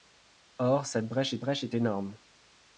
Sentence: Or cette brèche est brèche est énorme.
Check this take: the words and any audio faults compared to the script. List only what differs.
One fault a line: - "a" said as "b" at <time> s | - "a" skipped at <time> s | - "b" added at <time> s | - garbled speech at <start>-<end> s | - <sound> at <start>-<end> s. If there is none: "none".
none